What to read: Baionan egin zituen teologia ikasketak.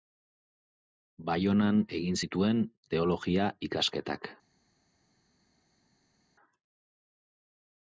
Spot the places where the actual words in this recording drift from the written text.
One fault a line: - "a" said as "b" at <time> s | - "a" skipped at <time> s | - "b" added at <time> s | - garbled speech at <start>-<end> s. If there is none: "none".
none